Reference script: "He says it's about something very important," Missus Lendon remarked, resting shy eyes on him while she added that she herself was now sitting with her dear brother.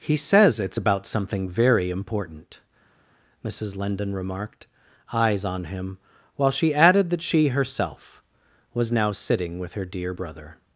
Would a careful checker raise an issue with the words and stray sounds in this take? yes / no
yes